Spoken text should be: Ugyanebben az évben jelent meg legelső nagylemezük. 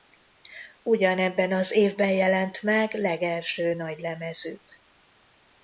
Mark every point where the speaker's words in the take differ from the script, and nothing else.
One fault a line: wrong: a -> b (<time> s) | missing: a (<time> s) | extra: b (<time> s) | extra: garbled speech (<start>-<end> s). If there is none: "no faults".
no faults